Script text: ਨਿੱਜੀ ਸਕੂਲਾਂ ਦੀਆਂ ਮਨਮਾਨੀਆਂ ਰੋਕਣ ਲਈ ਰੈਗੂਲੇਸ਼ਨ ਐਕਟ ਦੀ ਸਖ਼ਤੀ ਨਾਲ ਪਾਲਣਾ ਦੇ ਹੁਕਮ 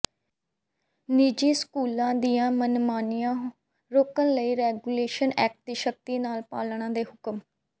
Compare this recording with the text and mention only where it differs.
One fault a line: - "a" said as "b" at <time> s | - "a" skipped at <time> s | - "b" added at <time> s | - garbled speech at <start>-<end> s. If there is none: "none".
none